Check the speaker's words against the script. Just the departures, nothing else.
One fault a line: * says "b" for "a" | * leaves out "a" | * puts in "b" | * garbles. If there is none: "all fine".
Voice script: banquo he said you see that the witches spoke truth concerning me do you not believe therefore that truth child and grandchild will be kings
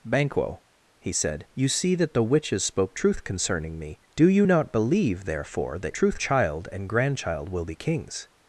all fine